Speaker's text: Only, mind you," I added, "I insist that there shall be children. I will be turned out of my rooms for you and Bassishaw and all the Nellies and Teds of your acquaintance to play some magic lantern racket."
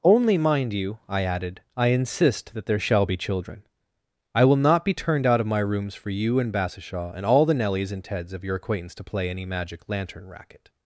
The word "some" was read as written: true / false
false